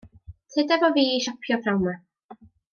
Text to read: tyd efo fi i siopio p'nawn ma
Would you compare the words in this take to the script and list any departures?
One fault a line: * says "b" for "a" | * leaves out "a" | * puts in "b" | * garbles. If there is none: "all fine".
all fine